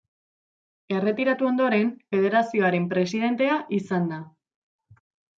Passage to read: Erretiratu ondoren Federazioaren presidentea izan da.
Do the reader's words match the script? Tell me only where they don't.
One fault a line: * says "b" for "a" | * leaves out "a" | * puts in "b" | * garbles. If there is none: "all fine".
all fine